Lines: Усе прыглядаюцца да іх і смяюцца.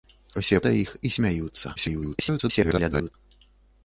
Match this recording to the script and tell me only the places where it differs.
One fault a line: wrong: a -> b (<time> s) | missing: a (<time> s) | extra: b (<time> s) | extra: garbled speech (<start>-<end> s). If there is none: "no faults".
missing: прыглядаюцца (0.6 s)
extra: garbled speech (1.8-3.1 s)